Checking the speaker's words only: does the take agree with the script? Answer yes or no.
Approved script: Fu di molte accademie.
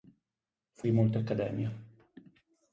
yes